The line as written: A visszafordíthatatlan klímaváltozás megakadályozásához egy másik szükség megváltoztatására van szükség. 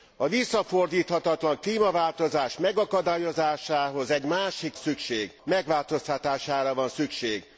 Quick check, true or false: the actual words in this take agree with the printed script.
true